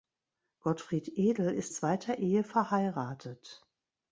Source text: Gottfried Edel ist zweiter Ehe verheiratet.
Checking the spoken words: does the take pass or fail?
pass